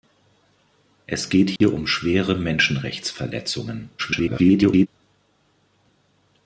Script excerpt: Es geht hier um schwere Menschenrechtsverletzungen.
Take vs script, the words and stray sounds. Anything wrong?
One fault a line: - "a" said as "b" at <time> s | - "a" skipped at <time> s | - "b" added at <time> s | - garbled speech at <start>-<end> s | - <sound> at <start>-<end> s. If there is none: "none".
- dropout at 1.6-1.6 s
- garbled speech at 4.0-4.9 s